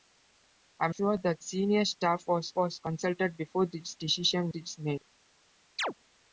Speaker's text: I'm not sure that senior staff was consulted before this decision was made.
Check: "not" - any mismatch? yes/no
yes